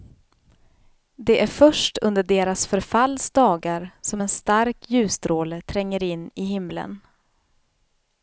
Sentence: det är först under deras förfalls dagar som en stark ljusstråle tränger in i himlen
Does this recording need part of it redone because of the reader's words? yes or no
no